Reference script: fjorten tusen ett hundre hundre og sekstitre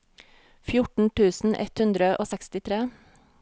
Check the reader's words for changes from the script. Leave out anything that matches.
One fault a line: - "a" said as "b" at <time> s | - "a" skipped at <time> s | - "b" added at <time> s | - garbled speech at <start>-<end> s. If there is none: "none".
- "hundre" skipped at 2.1 s